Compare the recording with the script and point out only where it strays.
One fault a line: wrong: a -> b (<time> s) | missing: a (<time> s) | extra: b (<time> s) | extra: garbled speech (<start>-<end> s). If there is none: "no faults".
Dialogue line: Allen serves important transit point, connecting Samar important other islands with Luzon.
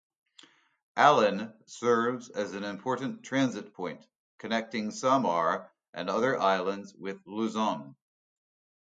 extra: as an (2.3 s)
wrong: important -> and (5.9 s)